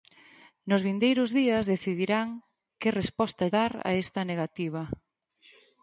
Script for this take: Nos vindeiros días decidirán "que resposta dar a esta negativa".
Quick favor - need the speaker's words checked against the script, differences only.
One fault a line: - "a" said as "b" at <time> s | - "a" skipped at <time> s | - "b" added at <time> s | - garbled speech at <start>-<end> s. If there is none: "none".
none